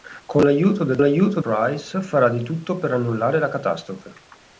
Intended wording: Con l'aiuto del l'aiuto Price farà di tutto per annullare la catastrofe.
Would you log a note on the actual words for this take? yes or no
no